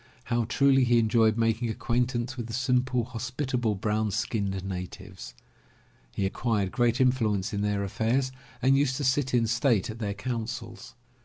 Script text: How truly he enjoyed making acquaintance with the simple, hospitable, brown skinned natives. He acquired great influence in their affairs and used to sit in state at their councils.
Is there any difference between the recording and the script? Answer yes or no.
no